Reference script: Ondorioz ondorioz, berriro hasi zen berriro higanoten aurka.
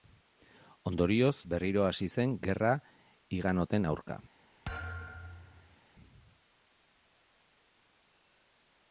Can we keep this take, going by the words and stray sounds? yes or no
no